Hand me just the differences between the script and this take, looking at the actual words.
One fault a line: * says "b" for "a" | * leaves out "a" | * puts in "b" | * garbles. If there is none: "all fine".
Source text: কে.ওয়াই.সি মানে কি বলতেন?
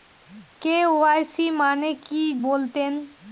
all fine